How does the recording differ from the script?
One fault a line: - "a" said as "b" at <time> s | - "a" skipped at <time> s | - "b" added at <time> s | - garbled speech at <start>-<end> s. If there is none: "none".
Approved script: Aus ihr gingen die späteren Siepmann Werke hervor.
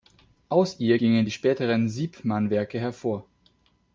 none